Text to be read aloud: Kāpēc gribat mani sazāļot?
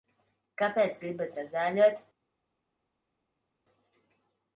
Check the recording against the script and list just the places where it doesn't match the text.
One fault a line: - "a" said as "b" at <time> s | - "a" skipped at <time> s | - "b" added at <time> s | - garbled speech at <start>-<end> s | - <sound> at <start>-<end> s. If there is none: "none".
- "mani" skipped at 1.3 s